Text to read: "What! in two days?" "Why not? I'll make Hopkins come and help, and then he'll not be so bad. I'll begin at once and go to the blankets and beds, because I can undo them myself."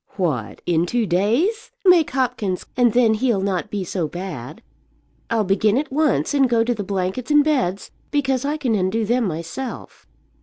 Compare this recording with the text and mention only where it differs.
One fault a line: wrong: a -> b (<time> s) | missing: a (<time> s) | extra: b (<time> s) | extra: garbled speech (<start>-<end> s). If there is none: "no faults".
missing: Why not I'll (1.7 s)
missing: come and help (2.6 s)